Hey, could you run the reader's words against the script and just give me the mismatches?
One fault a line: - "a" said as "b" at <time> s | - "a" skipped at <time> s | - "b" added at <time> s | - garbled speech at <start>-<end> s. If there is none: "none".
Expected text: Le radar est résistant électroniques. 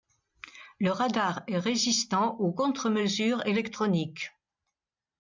- "aux contre mesures" added at 2.4 s